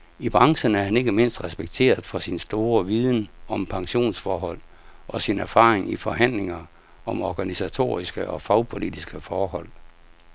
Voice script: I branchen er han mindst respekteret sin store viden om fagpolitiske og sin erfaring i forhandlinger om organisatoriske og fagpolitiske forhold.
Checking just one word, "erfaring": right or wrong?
right